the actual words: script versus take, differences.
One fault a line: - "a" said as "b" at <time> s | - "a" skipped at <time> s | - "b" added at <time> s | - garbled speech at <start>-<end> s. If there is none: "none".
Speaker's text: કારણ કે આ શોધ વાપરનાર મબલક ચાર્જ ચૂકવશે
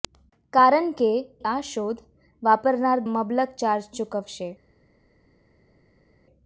none